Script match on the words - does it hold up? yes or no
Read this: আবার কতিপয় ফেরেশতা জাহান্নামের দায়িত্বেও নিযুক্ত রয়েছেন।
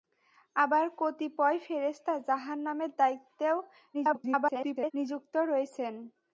no